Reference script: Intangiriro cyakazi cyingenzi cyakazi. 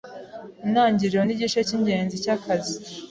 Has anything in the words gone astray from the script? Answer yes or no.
yes